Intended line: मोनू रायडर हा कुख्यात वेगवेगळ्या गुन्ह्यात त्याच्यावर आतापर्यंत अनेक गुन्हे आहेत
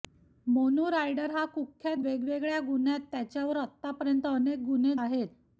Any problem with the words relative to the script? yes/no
no